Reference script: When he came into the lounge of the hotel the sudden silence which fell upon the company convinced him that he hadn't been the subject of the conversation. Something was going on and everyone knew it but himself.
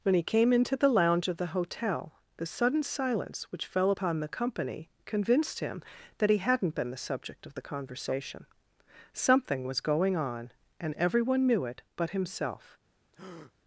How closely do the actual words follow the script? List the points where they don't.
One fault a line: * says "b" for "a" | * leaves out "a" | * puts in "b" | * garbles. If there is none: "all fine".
all fine